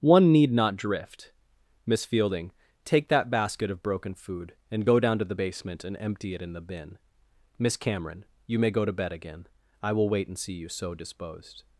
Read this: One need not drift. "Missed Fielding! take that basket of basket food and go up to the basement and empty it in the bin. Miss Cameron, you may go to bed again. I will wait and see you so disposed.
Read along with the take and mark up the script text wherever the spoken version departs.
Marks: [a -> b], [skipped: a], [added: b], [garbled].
One need not drift. ["Missed -> Miss] Fielding! take that basket of [basket -> broken] food and go [up -> down] to the basement and empty it in the bin. Miss Cameron, you may go to bed again. I will wait and see you so disposed.